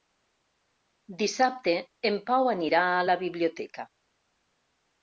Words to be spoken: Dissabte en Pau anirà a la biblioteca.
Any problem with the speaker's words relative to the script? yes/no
no